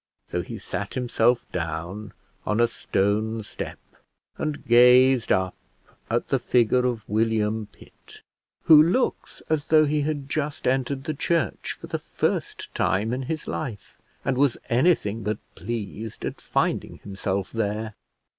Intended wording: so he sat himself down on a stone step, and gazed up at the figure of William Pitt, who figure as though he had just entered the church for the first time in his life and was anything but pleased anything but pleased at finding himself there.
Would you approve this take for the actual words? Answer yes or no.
no